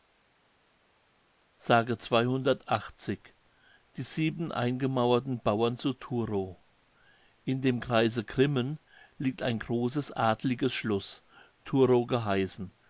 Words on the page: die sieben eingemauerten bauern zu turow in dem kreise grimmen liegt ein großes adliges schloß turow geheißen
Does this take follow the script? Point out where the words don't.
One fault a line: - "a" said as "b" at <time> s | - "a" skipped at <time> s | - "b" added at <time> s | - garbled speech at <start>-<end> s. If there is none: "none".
none